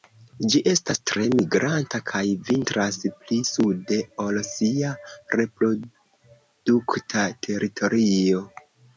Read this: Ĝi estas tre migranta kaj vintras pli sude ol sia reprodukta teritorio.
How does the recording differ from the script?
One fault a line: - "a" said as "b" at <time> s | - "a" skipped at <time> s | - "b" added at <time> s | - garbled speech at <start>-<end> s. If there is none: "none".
none